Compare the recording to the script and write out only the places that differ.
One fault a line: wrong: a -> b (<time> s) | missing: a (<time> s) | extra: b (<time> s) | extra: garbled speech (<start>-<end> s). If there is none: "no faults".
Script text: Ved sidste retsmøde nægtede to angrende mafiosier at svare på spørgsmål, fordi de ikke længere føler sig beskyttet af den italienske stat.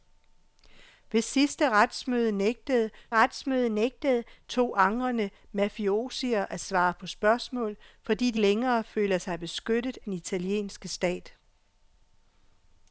extra: retsmøde nægtede (3.1 s)
missing: ikke (8.4 s)
missing: af (10.0 s)